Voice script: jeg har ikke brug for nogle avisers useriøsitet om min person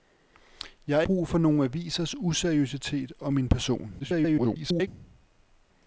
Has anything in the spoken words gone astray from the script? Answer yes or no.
yes